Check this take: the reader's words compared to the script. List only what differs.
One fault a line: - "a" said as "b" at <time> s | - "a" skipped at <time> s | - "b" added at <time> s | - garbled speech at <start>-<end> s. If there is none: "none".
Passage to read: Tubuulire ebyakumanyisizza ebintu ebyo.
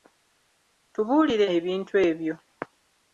- "ebyakumanyisizza" skipped at 1.4 s